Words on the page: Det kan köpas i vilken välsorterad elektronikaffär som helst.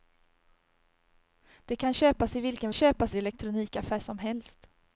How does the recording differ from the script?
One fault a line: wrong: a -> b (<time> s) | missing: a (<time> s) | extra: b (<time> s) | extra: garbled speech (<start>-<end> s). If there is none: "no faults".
wrong: välsorterad -> köpas (2.7 s)